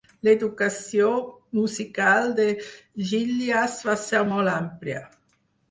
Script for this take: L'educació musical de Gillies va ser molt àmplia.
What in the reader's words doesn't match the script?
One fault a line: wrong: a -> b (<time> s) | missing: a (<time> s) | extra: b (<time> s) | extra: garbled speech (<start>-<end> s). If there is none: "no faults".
no faults